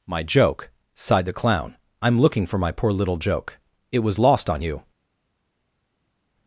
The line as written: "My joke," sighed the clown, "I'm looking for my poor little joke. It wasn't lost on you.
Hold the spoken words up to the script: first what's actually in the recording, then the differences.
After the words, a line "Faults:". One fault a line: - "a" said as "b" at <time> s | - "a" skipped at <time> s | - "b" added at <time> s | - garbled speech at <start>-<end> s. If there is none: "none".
"My joke," sighed the clown, "I'm looking for my poor little joke. It was lost on you.
Faults:
- "wasn't" said as "was" at 4.0 s